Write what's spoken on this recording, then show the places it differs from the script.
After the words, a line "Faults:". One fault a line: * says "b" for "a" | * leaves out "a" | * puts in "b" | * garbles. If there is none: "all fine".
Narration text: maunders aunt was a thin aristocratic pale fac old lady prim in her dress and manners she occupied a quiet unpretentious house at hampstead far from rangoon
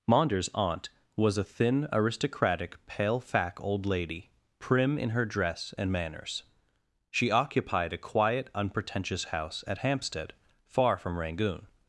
maunders aunt was a thin aristocratic pale fac old lady prim in her dress and manners she occupied a quiet unpretentious house at hampstead far from rangoon
Faults:
all fine